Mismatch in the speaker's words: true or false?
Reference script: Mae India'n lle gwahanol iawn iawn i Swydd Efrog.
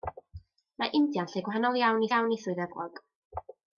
false